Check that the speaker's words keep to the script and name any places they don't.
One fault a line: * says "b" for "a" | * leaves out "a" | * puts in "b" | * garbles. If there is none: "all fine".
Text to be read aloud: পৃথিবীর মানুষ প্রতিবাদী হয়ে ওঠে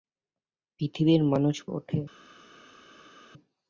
* leaves out "প্রতিবাদী হয়ে"